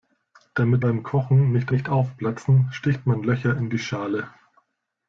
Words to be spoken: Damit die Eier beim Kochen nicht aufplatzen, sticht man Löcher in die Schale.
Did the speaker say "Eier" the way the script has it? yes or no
no